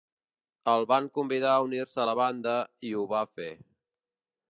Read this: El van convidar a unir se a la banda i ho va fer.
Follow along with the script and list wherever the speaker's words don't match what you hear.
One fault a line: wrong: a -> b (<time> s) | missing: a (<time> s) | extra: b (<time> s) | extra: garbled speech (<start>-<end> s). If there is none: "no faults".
no faults